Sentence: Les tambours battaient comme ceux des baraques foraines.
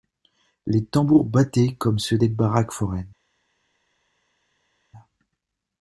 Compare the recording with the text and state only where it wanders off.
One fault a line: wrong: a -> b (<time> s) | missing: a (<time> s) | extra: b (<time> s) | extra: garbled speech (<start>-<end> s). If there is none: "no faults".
no faults